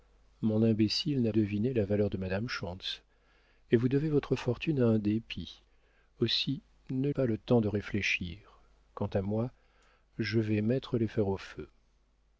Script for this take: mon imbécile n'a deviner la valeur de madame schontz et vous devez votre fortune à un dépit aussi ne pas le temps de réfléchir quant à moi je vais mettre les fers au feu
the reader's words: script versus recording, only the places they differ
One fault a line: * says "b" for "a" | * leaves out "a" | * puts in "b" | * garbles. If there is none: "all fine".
all fine